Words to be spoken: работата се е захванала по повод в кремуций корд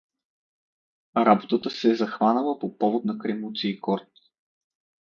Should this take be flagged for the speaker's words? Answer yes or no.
yes